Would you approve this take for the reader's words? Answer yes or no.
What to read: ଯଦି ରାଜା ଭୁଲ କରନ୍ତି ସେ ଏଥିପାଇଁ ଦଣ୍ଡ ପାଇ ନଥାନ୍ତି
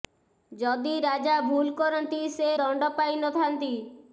no